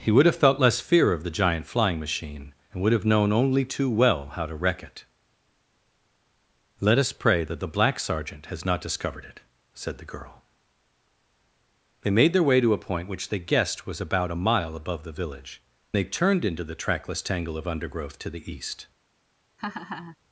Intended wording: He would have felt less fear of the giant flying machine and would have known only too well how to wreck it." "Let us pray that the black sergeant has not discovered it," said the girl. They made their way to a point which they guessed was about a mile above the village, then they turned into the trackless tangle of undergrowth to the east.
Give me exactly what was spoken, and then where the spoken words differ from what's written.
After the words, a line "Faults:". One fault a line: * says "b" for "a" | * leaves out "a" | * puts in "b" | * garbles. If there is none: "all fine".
He would have felt less fear of the giant flying machine and would have known only too well how to wreck it." "Let us pray that the black sergeant has not discovered it," said the girl. They made their way to a point which they guessed was about a mile above the village, they turned into the trackless tangle of undergrowth to the east.
Faults:
* leaves out "then"